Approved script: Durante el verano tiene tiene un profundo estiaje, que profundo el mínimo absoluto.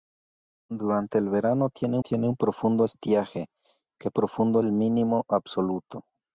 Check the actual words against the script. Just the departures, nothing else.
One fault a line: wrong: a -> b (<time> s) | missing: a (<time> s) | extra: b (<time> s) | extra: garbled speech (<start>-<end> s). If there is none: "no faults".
no faults